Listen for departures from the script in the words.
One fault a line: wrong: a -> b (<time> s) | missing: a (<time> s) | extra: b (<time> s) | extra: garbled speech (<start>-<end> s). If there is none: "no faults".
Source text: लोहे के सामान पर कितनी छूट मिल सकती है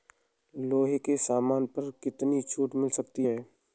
no faults